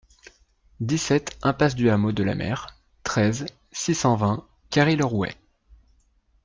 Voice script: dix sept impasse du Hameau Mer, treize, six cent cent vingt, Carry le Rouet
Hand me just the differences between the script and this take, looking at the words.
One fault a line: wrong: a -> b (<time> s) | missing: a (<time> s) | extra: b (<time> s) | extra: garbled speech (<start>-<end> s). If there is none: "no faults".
extra: de la (2.1 s)
missing: cent (4.2 s)